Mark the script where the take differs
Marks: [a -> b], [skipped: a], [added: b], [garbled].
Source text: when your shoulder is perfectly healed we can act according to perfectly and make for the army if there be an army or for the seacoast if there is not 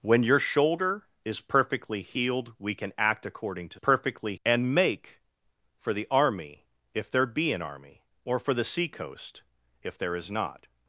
when your shoulder is perfectly healed we can act according to perfectly and make for the army if there be an army or for the seacoast if there is not